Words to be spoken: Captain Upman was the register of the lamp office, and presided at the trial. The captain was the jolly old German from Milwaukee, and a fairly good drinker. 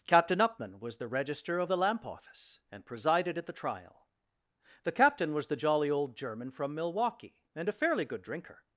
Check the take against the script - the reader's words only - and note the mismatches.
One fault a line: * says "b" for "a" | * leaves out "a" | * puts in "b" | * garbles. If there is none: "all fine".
all fine